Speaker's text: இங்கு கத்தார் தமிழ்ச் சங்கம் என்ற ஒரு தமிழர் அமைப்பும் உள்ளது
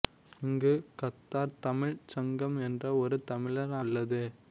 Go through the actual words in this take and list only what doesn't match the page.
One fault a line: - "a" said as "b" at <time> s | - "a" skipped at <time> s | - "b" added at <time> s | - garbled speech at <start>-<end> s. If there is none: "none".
- "அமைப்பும்" skipped at 3.8 s